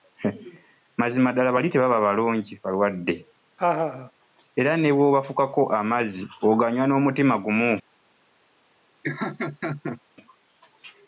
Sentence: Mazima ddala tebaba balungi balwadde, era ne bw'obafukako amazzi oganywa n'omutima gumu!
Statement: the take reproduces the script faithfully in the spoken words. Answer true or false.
false